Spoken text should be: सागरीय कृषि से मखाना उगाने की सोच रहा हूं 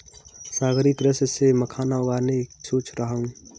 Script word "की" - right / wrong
wrong